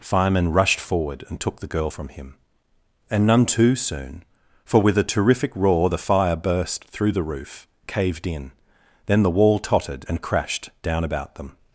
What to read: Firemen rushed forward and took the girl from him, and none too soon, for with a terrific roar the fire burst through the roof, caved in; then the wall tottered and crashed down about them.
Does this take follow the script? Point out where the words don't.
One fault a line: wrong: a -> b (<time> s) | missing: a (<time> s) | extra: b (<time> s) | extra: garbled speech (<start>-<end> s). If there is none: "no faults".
no faults